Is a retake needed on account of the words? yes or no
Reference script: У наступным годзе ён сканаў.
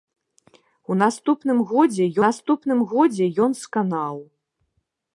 yes